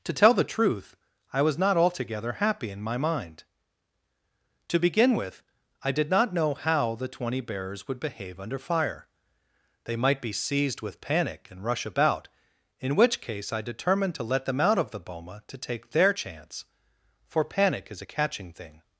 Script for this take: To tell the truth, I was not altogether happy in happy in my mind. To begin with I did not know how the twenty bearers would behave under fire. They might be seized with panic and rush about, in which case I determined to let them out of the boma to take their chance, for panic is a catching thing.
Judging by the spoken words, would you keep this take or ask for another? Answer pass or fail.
fail